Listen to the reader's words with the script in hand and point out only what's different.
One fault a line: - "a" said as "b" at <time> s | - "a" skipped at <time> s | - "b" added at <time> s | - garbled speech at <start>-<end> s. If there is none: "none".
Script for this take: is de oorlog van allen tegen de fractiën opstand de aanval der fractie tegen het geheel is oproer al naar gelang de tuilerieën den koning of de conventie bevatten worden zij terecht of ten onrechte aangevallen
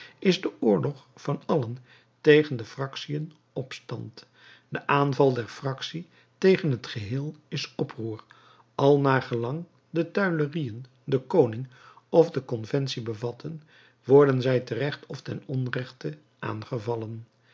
none